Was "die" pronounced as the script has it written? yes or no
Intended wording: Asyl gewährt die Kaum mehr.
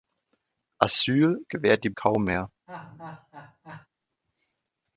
yes